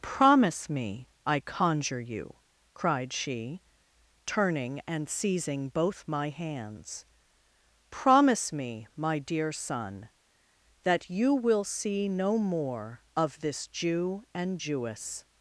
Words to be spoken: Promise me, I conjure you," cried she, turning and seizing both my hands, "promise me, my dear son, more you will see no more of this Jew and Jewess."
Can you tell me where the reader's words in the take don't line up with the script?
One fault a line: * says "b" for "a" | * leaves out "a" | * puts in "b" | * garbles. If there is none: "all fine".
* says "that" for "more"